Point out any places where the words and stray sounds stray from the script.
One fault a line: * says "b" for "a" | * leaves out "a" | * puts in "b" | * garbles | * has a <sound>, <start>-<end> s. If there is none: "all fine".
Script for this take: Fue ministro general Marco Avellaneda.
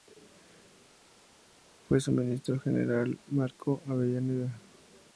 * puts in "su"